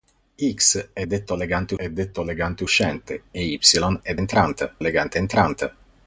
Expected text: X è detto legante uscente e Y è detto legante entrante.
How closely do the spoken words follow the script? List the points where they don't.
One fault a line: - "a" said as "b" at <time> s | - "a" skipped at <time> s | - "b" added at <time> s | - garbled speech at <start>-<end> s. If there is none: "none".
- "è detto legante" added at 1.8 s
- "detto" said as "entrante" at 4.2 s